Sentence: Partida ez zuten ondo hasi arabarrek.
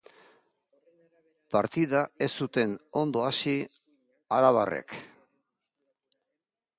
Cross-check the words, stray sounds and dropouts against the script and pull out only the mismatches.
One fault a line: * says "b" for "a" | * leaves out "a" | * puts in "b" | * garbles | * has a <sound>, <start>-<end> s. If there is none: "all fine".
all fine